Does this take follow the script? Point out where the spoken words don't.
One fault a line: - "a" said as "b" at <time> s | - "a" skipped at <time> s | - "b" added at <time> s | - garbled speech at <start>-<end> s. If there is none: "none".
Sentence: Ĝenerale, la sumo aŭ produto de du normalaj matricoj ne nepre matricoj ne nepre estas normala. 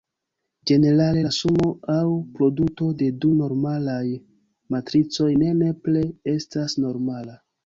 - "matricoj ne nepre" skipped at 6.0 s